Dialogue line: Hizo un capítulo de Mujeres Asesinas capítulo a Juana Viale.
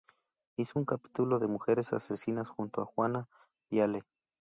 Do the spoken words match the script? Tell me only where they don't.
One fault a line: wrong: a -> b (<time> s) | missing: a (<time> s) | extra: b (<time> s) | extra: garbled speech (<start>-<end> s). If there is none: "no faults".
wrong: capítulo -> junto (2.5 s)